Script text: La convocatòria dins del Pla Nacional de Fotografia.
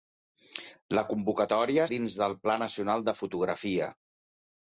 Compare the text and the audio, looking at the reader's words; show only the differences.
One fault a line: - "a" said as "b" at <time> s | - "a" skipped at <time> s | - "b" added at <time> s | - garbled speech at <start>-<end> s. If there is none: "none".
none